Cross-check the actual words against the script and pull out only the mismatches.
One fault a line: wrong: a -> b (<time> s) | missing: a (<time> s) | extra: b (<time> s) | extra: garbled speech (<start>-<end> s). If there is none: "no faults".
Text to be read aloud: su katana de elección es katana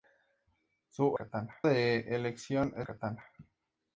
no faults